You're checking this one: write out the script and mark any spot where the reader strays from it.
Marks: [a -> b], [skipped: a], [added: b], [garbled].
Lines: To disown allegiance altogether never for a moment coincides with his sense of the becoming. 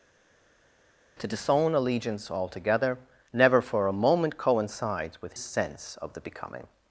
To disown allegiance altogether never for a moment coincides with [skipped: his] sense of the becoming.